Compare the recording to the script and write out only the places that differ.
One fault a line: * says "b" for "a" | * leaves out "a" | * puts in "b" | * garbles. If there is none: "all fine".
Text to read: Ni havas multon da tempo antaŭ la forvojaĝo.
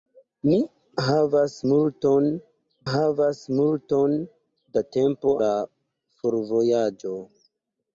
* puts in "havas multon"
* leaves out "antaŭ"